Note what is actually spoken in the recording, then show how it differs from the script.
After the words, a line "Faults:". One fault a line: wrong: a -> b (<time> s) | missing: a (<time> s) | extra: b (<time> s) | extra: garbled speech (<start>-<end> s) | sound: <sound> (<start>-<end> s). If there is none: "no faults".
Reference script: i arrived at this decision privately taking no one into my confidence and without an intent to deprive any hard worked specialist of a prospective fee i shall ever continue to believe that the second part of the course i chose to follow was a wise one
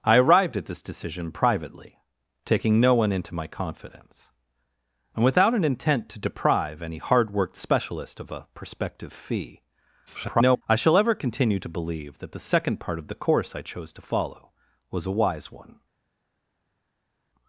i arrived at this decision privately taking no one into my confidence and without an intent to deprive any hard worked specialist of a prospective fee [garbled] i shall ever continue to believe that the second part of the course i chose to follow was a wise one
Faults:
extra: garbled speech (10.1-10.6 s)